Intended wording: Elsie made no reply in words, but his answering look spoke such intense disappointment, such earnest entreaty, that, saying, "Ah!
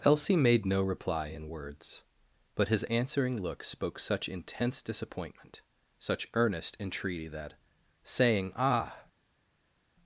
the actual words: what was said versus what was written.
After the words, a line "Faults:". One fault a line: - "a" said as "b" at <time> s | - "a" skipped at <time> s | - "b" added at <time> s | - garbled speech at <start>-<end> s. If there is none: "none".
Elsie made no reply in words, but his answering look spoke such intense disappointment, such earnest entreaty, that, saying, "Ah!
Faults:
none